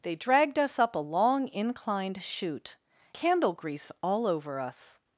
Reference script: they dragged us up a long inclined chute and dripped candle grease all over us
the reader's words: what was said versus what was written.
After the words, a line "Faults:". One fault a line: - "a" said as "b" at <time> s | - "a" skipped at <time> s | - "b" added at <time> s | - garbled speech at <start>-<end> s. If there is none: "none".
they dragged us up a long inclined chute candle grease all over us
Faults:
- "and dripped" skipped at 2.8 s